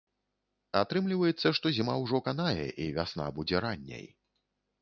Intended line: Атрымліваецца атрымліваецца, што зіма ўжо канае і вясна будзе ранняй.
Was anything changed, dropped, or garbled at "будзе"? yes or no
no